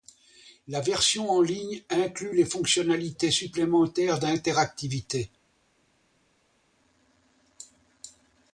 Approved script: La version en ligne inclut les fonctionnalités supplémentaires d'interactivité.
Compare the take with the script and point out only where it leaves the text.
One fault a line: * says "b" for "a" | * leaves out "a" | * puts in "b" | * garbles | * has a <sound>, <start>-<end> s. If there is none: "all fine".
all fine